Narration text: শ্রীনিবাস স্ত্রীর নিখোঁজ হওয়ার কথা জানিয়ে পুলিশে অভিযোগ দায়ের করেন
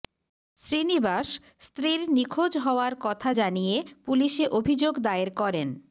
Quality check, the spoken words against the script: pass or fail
pass